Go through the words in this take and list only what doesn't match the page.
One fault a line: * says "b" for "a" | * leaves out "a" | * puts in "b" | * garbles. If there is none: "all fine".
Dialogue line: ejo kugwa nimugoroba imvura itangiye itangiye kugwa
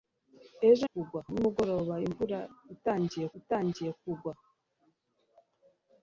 all fine